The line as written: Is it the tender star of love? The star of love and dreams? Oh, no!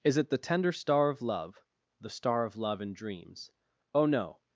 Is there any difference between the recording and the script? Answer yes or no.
no